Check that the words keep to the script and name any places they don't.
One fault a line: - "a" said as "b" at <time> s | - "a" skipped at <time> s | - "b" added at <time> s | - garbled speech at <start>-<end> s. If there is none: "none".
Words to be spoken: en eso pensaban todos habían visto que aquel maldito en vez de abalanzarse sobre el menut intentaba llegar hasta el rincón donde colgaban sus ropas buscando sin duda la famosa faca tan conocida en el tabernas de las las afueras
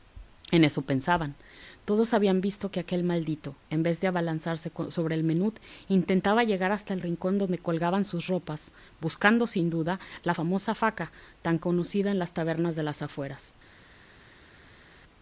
- "el" said as "las" at 12.2 s
- "las" skipped at 13.0 s